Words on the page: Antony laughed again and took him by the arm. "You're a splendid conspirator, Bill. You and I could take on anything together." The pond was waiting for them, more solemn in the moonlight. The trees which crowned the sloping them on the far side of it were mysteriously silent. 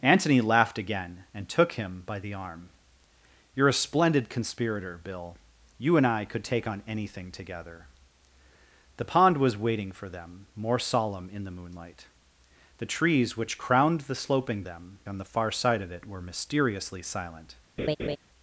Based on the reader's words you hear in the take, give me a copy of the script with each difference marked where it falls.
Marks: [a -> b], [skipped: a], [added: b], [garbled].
Antony laughed again and took him by the arm. "You're a splendid conspirator, Bill. You and I could take on anything together." The pond was waiting for them, more solemn in the moonlight. The trees which crowned the sloping them on the far side of it were mysteriously silent.